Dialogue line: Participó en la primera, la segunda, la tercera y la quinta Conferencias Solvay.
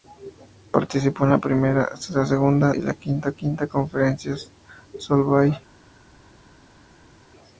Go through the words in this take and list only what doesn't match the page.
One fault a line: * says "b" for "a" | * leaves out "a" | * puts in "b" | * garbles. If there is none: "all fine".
* leaves out "la tercera"
* puts in "quinta"